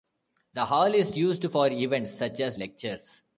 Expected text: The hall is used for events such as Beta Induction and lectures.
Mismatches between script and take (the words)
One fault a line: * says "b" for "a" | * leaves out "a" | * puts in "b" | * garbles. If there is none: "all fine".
* leaves out "Beta Induction and"